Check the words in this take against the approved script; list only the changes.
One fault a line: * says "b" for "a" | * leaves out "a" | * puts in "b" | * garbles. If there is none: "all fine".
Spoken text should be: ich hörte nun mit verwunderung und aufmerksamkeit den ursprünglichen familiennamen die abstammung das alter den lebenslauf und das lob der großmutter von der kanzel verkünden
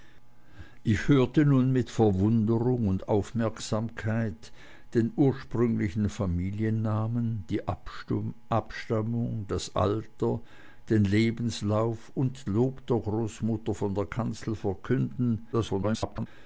* leaves out "das"
* garbles